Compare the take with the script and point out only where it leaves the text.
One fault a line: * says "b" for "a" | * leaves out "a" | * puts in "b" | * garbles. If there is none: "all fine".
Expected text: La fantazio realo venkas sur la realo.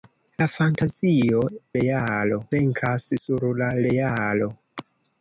all fine